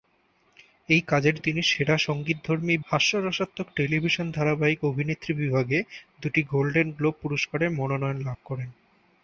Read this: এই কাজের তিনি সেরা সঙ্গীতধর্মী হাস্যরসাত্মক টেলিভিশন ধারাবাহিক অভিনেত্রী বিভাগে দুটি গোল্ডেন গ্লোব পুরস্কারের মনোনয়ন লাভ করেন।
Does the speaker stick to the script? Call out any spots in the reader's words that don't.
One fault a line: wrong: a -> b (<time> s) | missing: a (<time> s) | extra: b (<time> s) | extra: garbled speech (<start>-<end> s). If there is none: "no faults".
no faults